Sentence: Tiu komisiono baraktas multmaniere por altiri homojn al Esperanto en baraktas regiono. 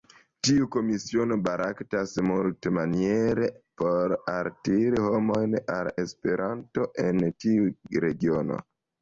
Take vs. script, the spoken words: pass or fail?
fail